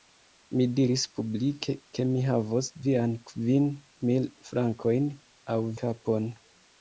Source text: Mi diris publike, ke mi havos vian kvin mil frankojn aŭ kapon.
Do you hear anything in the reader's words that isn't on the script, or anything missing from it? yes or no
no